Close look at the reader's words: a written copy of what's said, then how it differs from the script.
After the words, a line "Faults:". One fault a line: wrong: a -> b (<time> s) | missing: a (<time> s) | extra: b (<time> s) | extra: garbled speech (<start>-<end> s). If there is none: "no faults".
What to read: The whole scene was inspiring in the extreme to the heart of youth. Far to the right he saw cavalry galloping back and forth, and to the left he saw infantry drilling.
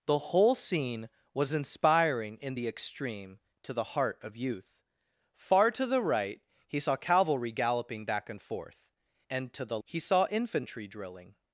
The whole scene was inspiring in the extreme to the heart of youth. Far to the right he saw cavalry galloping back and forth, and to the he saw infantry drilling.
Faults:
missing: left (9.8 s)